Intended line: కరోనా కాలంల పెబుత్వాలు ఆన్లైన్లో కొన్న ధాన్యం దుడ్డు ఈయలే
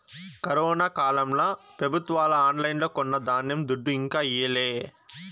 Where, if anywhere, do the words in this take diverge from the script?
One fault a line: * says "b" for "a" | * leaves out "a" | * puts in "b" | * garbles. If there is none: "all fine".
* puts in "ఇంకా"